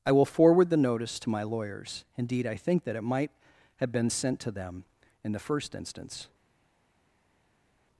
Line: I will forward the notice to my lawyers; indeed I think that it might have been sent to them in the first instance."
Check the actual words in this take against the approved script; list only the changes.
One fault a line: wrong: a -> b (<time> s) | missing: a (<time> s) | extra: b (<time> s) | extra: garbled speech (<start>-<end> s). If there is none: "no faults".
no faults